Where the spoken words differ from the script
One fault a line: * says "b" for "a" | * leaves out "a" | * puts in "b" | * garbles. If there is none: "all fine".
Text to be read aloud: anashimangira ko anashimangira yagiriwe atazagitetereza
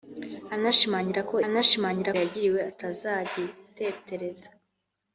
all fine